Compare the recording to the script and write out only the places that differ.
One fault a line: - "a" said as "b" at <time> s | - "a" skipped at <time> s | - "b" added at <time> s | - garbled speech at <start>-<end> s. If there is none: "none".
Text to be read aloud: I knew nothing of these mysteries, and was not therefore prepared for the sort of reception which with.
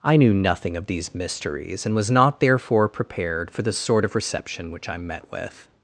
- "I met" added at 4.9 s